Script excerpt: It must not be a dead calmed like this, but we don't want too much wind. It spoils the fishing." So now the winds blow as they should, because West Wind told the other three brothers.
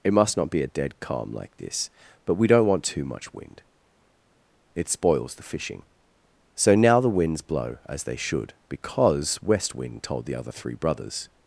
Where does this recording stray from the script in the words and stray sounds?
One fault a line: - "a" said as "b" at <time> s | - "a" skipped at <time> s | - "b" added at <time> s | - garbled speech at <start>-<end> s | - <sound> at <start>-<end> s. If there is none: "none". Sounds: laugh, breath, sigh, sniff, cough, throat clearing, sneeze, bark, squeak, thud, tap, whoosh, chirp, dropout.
- "calmed" said as "calm" at 1.0 s